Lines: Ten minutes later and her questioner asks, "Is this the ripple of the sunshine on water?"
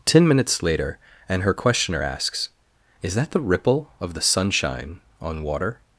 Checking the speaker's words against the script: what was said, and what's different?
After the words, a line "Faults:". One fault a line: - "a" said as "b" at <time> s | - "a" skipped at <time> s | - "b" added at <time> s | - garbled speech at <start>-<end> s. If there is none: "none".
Ten minutes later and her questioner asks, "Is that the ripple of the sunshine on water?"
Faults:
- "this" said as "that" at 3.2 s